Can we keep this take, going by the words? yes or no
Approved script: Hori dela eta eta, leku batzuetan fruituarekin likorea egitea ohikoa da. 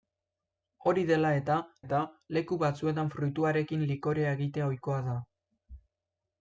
yes